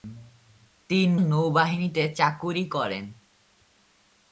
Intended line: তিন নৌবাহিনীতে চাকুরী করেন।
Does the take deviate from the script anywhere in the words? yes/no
no